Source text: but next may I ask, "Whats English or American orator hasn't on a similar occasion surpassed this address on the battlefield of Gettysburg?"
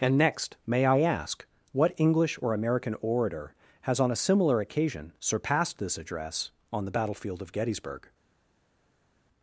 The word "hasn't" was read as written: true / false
false